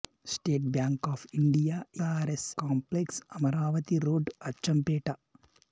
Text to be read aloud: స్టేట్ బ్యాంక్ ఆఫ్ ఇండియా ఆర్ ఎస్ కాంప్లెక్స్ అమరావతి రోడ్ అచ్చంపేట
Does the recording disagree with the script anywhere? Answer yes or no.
no